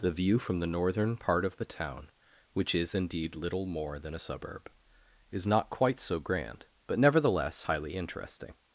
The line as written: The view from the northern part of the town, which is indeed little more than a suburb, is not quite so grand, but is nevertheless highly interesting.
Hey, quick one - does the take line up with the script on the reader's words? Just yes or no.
no